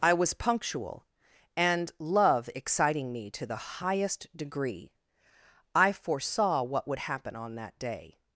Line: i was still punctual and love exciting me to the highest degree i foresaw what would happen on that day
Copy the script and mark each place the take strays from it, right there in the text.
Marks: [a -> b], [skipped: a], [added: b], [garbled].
i was [skipped: still] punctual and love exciting me to the highest degree i foresaw what would happen on that day